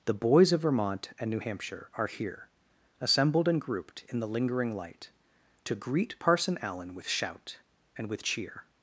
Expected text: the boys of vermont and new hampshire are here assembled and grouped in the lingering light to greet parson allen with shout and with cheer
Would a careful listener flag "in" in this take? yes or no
no